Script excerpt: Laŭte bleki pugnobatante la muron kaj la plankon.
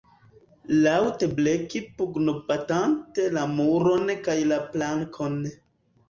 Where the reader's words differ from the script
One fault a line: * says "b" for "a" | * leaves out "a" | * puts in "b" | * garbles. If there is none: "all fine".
all fine